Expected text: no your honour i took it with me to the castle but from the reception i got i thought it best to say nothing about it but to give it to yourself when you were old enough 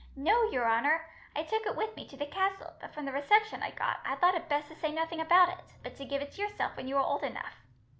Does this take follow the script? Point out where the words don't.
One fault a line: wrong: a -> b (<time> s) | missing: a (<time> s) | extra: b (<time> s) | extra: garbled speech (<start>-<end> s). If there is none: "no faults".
no faults